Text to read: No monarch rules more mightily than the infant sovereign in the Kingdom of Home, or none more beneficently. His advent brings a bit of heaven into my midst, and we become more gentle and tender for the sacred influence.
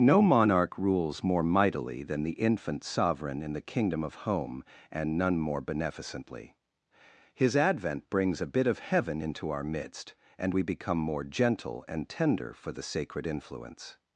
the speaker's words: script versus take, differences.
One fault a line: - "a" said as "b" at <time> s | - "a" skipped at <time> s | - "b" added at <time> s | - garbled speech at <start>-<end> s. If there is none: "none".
- "or" said as "and" at 4.9 s
- "my" said as "our" at 9.5 s